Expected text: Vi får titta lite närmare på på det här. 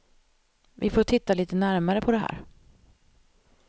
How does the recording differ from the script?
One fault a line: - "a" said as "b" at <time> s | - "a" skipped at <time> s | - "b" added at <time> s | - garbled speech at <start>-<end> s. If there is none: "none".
- "på" skipped at 2.1 s